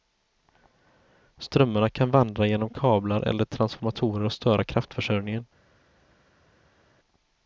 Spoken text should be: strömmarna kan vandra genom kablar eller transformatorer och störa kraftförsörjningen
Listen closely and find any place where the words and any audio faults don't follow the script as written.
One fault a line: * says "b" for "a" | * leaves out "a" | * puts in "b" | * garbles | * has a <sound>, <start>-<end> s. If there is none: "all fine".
all fine